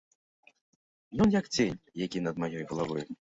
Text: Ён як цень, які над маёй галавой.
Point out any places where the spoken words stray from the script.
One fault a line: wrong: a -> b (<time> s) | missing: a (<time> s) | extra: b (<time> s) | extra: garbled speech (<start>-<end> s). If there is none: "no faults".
no faults